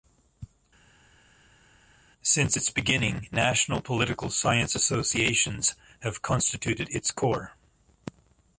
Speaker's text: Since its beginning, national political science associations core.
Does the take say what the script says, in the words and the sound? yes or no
no